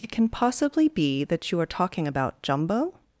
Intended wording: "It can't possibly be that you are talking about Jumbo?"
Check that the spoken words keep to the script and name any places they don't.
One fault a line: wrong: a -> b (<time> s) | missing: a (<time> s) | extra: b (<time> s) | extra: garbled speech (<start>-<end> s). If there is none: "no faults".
wrong: can't -> can (0.1 s)